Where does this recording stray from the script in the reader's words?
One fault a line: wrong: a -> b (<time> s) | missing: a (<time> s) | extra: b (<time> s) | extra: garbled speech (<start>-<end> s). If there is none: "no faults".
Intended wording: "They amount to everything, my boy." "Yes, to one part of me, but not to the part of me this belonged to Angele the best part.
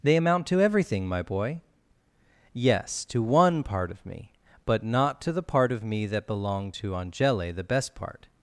wrong: this -> that (6.1 s)